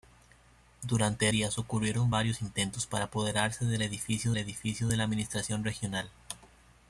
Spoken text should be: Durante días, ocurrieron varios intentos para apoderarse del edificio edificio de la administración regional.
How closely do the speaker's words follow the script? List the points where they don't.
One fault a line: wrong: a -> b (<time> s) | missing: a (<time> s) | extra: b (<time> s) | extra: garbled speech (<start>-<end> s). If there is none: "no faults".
no faults